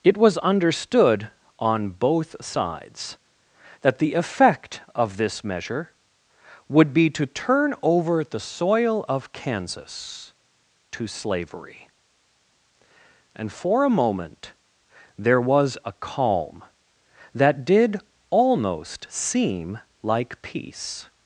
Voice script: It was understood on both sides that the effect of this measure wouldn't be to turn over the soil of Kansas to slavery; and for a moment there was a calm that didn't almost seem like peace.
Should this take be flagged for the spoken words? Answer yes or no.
yes